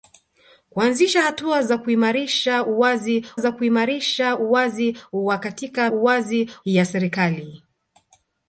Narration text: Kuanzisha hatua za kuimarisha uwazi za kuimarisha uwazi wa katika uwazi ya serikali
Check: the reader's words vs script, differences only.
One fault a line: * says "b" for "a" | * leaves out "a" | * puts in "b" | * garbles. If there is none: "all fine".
all fine